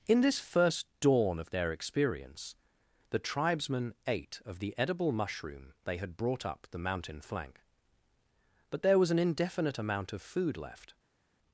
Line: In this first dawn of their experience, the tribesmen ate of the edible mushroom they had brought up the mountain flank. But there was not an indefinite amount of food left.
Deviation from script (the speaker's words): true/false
true